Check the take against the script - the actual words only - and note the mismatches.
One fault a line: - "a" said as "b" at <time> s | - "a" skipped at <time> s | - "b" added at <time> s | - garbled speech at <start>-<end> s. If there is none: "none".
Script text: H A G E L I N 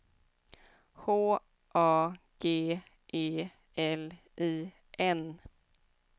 none